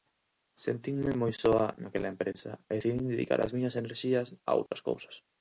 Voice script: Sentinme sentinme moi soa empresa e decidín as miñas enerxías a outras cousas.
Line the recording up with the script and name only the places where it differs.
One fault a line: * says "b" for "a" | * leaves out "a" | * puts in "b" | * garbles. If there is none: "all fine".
* leaves out "sentinme"
* puts in "naquela"
* puts in "dedicar"